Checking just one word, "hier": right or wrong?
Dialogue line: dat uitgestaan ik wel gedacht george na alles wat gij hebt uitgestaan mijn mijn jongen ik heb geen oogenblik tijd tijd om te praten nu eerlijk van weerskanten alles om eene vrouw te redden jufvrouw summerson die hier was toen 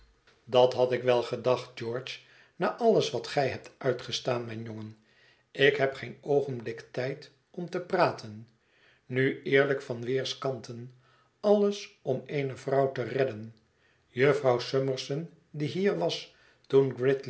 right